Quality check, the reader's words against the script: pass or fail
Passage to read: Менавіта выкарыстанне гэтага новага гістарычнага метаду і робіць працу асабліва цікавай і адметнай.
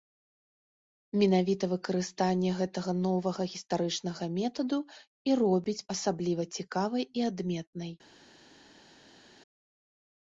fail